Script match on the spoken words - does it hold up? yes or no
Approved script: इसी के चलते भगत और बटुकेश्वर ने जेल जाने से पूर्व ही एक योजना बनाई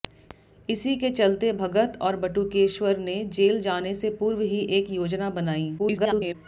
no